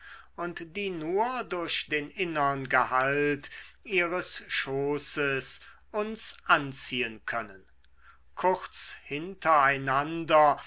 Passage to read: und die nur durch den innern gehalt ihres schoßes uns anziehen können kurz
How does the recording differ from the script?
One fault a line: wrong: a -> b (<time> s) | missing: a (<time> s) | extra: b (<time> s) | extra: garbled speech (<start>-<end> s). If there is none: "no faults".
no faults